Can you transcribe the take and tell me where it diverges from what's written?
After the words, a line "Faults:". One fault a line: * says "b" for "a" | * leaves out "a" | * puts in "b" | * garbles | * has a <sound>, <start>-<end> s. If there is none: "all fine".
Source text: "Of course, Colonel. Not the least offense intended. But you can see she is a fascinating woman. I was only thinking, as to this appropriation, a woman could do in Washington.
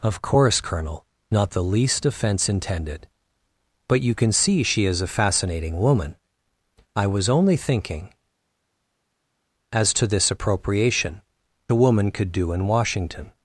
"Of course, Colonel. Not the least offense intended. But you can see she is a fascinating woman. I was only thinking, as to this appropriation, a woman could do in Washington.
Faults:
all fine